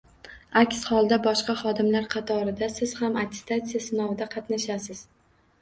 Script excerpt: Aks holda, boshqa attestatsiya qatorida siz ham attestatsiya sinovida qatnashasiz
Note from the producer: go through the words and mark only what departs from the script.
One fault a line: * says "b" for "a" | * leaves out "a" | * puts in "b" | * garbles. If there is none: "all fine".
* says "xodimlar" for "attestatsiya"